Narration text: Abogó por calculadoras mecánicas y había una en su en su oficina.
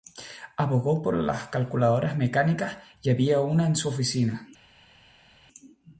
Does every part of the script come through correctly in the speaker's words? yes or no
no